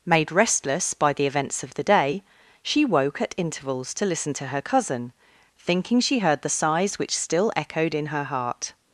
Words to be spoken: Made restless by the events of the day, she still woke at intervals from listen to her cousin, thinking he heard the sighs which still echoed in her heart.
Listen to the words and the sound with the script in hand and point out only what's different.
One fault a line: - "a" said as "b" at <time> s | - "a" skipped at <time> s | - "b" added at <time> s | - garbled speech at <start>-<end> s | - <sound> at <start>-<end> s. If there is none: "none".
- "still" skipped at 2.9 s
- "from" said as "to" at 4.0 s
- "he" said as "she" at 6.0 s